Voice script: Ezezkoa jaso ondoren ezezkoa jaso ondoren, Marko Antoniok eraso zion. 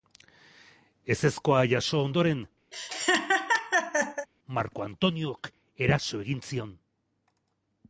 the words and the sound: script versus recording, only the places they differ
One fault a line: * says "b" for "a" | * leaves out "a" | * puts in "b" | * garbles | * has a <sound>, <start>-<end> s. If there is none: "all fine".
* leaves out "ezezkoa jaso ondoren"
* has a laugh, 2.7-4.3 s
* puts in "egin"